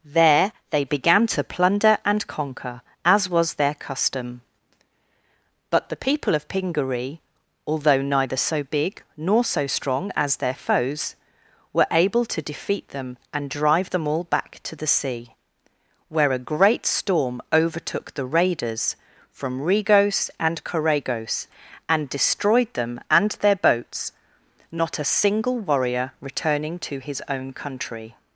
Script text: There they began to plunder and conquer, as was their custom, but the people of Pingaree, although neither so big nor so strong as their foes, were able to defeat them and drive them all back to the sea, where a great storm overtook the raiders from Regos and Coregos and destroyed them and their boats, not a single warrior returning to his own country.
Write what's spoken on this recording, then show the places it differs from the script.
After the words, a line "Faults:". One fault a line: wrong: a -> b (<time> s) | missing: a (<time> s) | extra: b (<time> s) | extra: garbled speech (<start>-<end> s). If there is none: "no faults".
There they began to plunder and conquer, as was their custom, but the people of Pingaree, although neither so big nor so strong as their foes, were able to defeat them and drive them all back to the sea, where a great storm overtook the raiders from Regos and Coregos and destroyed them and their boats, not a single warrior returning to his own country.
Faults:
no faults